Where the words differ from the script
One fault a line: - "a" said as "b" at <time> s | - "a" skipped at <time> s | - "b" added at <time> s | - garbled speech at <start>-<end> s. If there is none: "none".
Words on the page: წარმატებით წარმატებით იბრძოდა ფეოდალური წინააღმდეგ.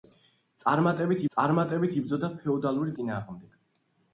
none